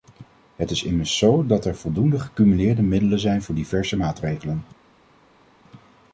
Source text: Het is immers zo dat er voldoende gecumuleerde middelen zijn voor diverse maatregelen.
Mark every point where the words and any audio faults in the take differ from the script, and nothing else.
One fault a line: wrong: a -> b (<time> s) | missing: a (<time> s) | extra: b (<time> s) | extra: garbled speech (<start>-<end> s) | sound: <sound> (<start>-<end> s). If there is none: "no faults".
no faults